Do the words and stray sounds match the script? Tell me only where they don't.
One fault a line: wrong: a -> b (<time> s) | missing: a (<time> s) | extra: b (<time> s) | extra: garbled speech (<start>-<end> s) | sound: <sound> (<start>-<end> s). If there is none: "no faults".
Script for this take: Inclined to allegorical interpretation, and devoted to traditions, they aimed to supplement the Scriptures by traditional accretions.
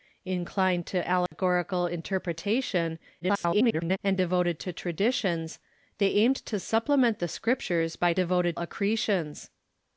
sound: dropout (1.3-1.3 s)
extra: garbled speech (3.2-4.0 s)
wrong: traditional -> devoted (8.1 s)